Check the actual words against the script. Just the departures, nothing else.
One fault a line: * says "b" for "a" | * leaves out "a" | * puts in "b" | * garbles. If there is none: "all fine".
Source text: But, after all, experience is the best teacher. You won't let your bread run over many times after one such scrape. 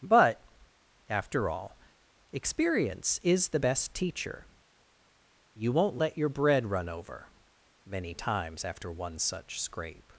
all fine